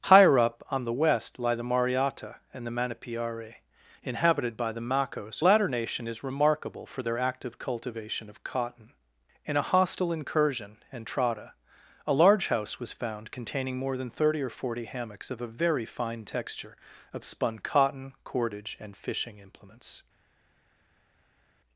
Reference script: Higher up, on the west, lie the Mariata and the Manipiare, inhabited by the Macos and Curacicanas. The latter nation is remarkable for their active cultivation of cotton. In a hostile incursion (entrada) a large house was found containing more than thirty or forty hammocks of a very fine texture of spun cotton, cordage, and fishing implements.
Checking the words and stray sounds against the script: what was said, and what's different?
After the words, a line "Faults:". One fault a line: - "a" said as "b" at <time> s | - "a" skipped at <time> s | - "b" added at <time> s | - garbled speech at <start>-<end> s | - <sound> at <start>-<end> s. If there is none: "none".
Higher up, on the west, lie the Mariata and the Manipiare, inhabited by the Macos latter nation is remarkable for their active cultivation of cotton. In a hostile incursion (entrada) a large house was found containing more than thirty or forty hammocks of a very fine texture of spun cotton, cordage, and fishing implements.
Faults:
- "and Curacicanas The" skipped at 5.4 s